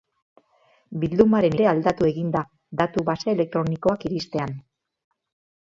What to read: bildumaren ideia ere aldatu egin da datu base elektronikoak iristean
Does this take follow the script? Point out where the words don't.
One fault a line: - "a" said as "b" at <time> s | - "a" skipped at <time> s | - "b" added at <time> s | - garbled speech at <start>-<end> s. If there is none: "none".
- "ideia" skipped at 1.6 s